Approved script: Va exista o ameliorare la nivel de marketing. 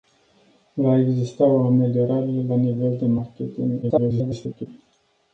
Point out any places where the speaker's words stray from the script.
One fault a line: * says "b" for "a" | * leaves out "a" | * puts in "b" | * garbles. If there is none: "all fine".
* garbles